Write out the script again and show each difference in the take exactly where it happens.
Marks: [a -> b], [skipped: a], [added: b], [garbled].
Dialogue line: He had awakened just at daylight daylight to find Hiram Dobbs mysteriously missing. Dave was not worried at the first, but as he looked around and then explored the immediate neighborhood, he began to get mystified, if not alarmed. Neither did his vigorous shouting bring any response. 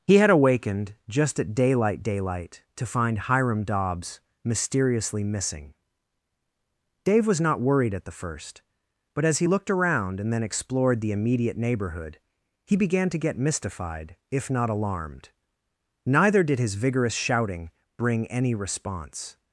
He had awakened just at daylight daylight to find Hiram Dobbs mysteriously missing. Dave was not worried at the first, but as he looked around and then explored the immediate neighborhood, he began to get mystified, if not alarmed. Neither did his vigorous shouting bring any response.